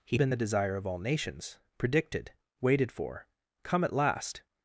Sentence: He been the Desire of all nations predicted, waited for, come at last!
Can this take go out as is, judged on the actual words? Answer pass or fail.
pass